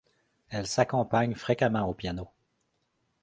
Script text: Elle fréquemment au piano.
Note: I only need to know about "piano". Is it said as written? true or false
true